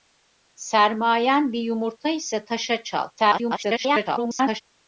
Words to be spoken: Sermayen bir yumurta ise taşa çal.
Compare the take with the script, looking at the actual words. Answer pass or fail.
fail